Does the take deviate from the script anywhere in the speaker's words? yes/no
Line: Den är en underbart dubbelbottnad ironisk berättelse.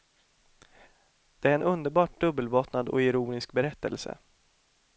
yes